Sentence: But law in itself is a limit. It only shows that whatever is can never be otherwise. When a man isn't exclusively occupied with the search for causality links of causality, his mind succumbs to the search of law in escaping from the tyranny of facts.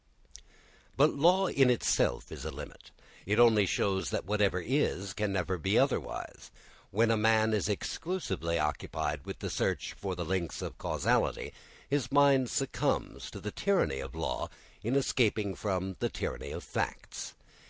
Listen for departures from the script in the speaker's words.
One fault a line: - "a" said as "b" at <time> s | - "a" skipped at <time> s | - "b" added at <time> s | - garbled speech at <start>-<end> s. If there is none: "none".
- "isn't" said as "is" at 7.5 s
- "causality" said as "the" at 10.1 s
- "search" said as "tyranny" at 13.5 s